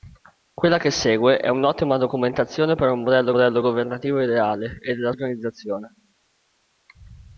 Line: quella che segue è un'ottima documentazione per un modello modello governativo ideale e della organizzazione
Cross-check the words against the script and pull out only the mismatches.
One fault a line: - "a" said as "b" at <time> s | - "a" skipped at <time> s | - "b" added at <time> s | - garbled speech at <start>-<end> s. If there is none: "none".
none